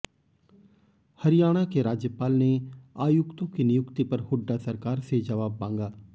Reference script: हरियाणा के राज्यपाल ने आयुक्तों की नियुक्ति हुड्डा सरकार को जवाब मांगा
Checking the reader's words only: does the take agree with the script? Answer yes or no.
no